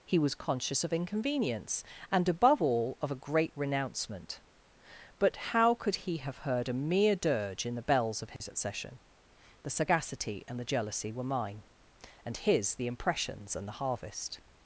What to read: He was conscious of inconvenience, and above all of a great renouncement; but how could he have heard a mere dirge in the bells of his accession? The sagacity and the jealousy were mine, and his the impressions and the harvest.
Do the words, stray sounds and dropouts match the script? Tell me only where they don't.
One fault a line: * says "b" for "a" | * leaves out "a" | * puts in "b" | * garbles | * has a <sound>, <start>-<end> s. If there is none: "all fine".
* has a dropout, 8.4-8.4 s